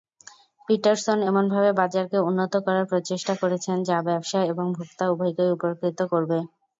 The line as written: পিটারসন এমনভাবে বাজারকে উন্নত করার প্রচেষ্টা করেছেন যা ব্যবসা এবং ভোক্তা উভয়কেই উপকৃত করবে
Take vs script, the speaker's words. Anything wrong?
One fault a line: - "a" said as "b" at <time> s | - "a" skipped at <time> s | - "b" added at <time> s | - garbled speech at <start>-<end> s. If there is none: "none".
none